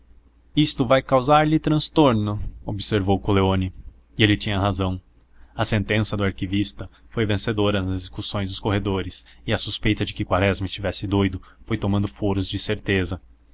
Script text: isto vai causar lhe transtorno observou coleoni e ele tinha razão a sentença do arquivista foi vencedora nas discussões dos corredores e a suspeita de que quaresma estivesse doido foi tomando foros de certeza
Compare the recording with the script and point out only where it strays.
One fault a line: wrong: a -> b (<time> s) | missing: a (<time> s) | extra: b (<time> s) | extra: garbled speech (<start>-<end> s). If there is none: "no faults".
no faults